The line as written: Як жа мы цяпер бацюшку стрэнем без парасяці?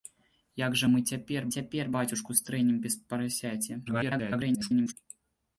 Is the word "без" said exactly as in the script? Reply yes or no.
yes